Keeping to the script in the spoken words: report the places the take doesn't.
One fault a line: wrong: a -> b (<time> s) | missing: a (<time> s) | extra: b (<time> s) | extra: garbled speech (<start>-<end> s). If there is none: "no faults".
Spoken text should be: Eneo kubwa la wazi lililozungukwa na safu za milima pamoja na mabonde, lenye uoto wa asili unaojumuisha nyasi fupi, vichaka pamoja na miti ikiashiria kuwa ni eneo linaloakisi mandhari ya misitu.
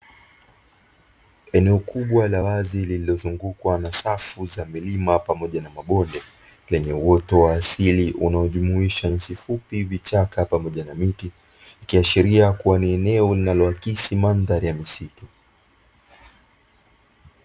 no faults